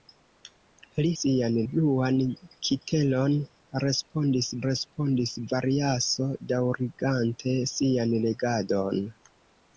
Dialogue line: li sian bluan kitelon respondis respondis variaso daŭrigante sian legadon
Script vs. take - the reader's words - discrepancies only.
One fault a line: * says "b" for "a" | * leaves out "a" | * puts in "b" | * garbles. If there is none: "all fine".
all fine